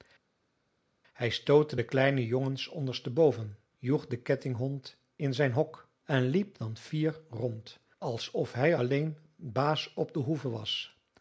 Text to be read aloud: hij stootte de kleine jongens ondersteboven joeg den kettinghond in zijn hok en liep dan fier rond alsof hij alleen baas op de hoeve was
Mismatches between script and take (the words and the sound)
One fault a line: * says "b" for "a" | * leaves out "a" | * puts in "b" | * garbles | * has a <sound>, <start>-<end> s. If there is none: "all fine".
all fine